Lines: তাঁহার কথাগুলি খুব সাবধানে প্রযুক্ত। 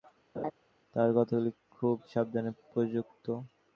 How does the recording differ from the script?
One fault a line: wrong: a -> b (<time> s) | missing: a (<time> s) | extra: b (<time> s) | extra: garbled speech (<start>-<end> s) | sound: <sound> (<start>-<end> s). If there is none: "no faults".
sound: laugh (0.3-0.5 s)